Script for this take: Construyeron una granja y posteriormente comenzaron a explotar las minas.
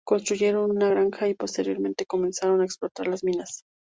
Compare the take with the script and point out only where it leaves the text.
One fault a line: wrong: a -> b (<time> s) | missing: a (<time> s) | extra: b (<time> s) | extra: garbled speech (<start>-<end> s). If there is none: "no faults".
no faults